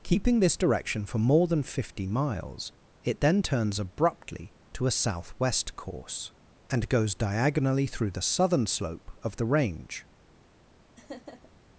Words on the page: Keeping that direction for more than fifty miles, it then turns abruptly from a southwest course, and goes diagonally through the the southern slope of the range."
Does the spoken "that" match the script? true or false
false